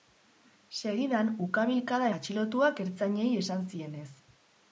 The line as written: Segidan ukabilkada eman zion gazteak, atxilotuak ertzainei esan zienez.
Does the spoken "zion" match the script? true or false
false